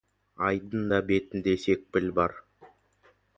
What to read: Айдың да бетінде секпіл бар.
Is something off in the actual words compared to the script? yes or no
no